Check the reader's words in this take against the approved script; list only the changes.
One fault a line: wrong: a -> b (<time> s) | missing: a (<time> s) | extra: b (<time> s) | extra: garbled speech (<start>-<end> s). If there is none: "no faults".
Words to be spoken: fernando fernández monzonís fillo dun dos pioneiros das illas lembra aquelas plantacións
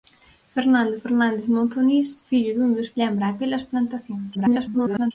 missing: pioneiros das illas (2.9 s)
extra: garbled speech (4.3-5.1 s)